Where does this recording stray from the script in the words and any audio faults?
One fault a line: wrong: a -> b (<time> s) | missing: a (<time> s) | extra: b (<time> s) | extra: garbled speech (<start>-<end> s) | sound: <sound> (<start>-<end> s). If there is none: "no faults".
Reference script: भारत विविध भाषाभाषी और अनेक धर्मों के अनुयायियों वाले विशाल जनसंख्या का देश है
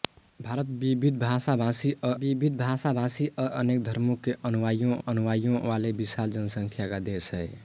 extra: विविध भाषाभाषी और (2.2 s)
extra: अनुयायियों (5.1 s)